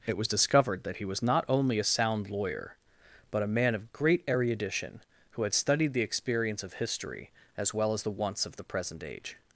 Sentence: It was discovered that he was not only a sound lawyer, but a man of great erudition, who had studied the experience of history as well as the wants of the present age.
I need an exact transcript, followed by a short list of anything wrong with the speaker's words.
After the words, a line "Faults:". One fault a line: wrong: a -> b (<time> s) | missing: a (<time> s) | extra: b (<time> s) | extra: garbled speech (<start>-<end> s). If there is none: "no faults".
It was discovered that he was not only a sound lawyer, but a man of great erudition, who had studied the experience of history as well as the wants of the present age.
Faults:
no faults